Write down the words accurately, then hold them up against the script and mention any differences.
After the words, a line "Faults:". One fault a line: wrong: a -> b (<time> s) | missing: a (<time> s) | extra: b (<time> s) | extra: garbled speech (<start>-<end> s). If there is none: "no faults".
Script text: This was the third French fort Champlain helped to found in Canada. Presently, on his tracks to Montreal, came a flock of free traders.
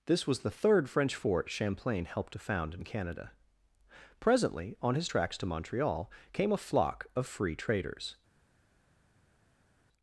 This was the third French fort Champlain helped to found in Canada. Presently, on his tracks to Montreal, came a flock of free traders.
Faults:
no faults